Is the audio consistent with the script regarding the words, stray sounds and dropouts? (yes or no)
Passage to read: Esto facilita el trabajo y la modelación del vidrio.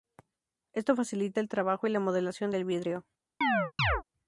no